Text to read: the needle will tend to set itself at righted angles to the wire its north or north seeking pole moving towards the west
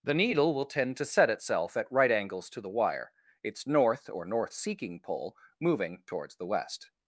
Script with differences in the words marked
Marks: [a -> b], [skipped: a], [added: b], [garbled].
the needle will tend to set itself at [righted -> right] angles to the wire its north or north seeking pole moving towards the west